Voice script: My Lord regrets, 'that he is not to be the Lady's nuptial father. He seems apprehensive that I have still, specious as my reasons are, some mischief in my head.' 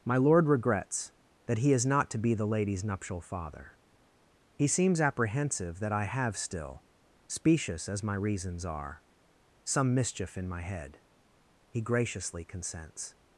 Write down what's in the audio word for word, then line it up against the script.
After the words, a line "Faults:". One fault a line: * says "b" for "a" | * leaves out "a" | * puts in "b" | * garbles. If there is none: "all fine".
My Lord regrets, 'that he is not to be the Lady's nuptial father. He seems apprehensive that I have still, specious as my reasons are, some mischief in my head.' He graciously consents
Faults:
* puts in "He graciously consents"